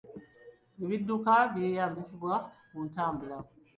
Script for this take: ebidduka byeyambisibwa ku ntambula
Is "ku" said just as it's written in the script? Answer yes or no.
yes